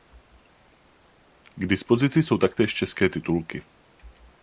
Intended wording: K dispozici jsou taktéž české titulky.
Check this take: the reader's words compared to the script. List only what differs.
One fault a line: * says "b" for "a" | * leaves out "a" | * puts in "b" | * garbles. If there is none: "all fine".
all fine